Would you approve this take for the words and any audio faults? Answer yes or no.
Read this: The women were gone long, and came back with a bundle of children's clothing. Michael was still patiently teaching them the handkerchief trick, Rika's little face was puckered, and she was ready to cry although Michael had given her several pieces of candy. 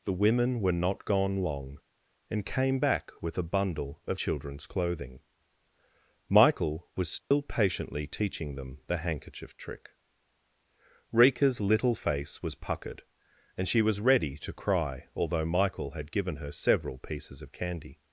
no